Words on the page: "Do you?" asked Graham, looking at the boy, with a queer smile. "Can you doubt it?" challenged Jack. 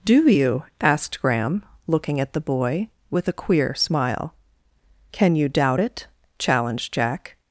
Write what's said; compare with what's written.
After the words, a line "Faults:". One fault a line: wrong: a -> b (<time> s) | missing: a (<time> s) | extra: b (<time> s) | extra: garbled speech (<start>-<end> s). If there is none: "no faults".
"Do you?" asked Graham, looking at the boy, with a queer smile. "Can you doubt it?" challenged Jack.
Faults:
no faults